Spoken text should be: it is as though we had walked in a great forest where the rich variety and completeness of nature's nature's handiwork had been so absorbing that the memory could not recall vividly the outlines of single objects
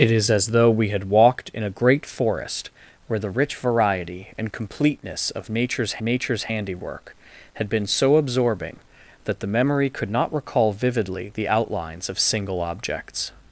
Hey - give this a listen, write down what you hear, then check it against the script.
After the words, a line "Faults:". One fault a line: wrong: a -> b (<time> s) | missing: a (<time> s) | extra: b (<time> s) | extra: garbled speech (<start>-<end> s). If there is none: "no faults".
it is as though we had walked in a great forest where the rich variety and completeness of nature's nature's handiwork had been so absorbing that the memory could not recall vividly the outlines of single objects
Faults:
no faults